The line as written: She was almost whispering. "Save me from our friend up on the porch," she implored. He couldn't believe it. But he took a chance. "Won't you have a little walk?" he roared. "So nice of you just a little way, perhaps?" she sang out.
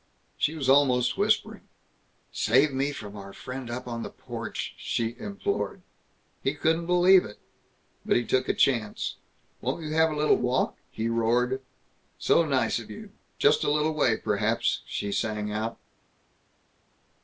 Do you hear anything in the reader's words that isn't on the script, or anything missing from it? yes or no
no